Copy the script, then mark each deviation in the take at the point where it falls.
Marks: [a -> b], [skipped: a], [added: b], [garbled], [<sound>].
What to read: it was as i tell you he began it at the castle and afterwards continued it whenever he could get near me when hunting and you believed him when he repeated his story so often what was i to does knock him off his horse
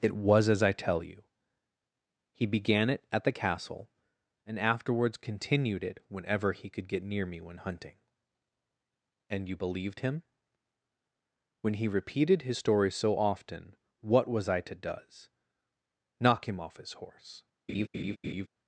it was as i tell you he began it at the castle and afterwards continued it whenever he could get near me when hunting and you believed him when he repeated his story so often what was i to does knock him off his horse [laugh]